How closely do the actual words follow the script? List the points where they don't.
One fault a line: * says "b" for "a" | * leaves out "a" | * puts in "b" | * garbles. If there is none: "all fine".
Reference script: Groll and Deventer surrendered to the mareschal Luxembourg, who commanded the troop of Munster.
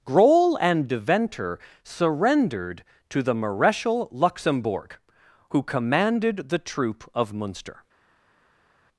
all fine